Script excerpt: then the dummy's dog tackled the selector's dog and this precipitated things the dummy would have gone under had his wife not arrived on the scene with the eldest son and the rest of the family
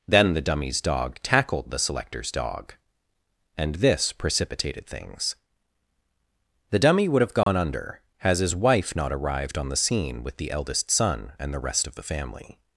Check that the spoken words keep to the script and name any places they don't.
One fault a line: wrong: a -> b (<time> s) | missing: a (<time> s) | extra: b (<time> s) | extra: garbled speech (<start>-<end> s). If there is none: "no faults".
wrong: had -> has (8.2 s)